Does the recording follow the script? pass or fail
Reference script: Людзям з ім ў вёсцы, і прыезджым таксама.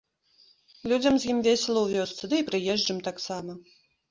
fail